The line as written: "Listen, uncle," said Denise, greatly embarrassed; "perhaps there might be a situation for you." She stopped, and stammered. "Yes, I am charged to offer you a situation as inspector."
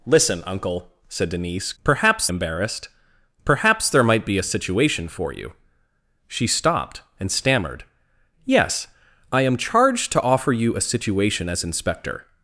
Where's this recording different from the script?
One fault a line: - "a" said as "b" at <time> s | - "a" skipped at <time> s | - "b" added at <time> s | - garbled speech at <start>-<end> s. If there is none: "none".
- "greatly" said as "perhaps" at 1.8 s